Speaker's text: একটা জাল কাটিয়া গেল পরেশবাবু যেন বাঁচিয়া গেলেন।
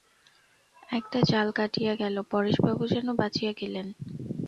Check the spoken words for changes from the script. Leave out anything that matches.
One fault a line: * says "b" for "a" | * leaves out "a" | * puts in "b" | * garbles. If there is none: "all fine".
all fine